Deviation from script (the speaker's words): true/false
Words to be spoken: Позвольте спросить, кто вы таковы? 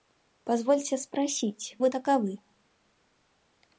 true